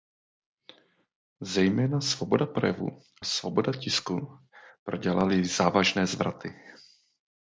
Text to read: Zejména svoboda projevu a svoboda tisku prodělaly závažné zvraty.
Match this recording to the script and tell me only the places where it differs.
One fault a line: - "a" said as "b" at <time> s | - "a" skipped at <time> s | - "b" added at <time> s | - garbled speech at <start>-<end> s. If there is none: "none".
- "a" skipped at 3.0 s